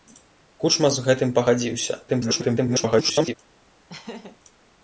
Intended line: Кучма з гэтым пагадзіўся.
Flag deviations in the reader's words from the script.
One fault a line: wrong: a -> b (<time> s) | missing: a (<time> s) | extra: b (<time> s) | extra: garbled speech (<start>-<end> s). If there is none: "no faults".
extra: garbled speech (2.1-3.3 s)